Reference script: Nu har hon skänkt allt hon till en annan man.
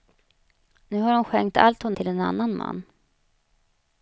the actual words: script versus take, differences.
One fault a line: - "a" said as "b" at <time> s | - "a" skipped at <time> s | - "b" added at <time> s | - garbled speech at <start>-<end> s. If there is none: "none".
none